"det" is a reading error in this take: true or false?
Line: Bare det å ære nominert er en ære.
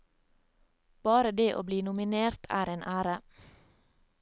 false